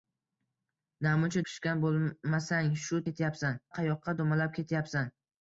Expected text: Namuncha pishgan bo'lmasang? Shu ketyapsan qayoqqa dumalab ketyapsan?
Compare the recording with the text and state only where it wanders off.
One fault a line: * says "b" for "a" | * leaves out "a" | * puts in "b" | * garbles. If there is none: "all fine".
all fine